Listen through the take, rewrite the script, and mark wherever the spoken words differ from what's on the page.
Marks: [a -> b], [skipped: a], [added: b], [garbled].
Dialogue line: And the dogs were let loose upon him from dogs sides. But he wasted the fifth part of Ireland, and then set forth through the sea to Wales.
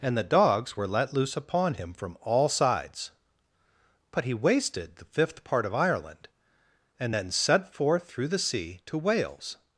And the dogs were let loose upon him from [dogs -> all] sides. But he wasted the fifth part of Ireland, and then set forth through the sea to Wales.